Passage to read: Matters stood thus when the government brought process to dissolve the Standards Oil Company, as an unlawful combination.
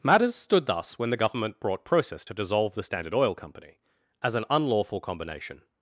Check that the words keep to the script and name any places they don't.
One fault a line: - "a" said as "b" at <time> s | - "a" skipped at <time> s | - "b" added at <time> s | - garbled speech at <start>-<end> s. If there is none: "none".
- "Standards" said as "Standard" at 2.8 s